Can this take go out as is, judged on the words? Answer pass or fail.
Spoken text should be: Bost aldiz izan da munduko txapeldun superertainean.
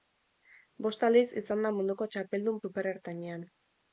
pass